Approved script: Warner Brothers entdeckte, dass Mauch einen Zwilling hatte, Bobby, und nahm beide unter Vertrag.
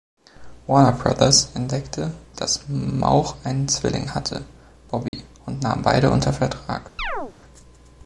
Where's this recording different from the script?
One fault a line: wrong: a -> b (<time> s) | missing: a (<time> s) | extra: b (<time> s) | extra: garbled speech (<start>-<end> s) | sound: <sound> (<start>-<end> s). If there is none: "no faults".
sound: dropout (5.1-5.1 s)
sound: chirp (7.0-7.3 s)